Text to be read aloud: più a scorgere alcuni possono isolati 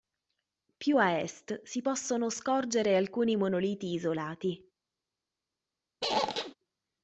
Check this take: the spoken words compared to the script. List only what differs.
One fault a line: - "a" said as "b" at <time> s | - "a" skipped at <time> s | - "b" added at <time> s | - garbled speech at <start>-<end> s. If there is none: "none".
- "est si possono" added at 1.2 s
- "possono" said as "monoliti" at 3.3 s